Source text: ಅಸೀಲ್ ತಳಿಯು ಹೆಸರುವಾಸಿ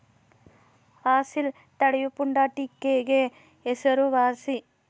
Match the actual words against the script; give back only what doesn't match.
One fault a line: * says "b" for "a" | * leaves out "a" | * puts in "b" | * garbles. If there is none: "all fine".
* puts in "ಪುಂಡಾಟಿಕೆಗೆ"